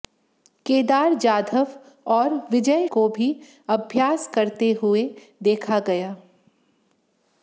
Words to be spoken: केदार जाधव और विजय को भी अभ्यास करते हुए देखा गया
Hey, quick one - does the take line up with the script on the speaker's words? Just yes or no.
yes